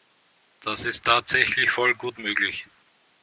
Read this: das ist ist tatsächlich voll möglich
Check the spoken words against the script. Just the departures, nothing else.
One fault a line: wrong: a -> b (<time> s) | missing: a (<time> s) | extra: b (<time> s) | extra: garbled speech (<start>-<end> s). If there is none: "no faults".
missing: ist (1.1 s)
extra: gut (1.9 s)